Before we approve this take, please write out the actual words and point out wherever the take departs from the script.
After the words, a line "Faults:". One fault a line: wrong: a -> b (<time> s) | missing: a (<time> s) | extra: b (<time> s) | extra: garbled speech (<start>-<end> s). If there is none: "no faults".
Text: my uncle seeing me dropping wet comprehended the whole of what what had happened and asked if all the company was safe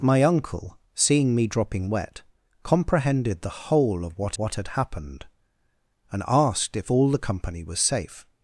my uncle seeing me dropping wet comprehended the whole of what what had happened and asked if all the company was safe
Faults:
no faults